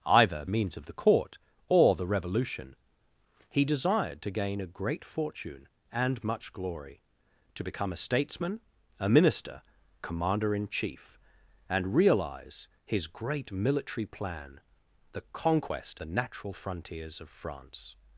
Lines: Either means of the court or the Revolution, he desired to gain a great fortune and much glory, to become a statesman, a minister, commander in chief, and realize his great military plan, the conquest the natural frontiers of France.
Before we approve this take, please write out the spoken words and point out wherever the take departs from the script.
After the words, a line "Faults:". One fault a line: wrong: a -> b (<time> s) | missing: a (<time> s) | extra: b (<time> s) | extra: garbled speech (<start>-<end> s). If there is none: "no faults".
Either means of the court or the Revolution, he desired to gain a great fortune and much glory, to become a statesman, a minister, commander in chief, and realize his great military plan, the conquest the natural frontiers of France.
Faults:
no faults